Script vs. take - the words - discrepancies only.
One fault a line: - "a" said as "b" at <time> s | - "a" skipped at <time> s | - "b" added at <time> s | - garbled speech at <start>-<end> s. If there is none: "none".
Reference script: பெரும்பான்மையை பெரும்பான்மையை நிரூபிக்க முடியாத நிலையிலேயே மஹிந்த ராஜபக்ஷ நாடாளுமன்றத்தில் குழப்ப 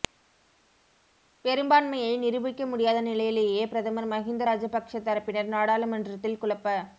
- "பெரும்பான்மையை" skipped at 2.1 s
- "பிரதமர்" added at 3.7 s
- "தரப்பினர்" added at 5.0 s